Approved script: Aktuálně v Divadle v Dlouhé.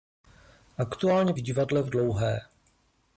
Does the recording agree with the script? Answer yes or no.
yes